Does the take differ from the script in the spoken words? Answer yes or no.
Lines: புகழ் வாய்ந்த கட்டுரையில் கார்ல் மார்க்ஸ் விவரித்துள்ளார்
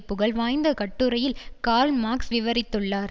no